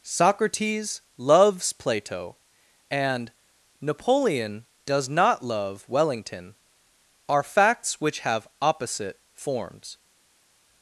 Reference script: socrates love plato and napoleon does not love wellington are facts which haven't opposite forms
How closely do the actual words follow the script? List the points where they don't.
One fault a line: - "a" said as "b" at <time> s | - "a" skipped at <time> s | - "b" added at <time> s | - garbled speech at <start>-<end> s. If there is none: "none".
- "love" said as "loves" at 1.2 s
- "haven't" said as "have" at 8.2 s